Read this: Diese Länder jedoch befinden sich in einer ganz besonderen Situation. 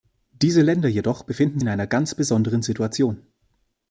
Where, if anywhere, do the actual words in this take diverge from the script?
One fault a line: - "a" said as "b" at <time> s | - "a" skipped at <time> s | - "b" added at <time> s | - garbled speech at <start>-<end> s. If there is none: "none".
- "sich" skipped at 1.6 s